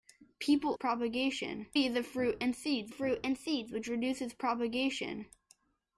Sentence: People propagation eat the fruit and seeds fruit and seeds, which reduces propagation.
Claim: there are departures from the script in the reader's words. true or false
false